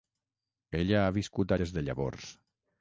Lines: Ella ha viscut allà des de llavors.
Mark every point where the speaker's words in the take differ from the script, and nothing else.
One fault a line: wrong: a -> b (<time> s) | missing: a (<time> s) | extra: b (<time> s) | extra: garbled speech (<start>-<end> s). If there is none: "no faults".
missing: allà (1.5 s)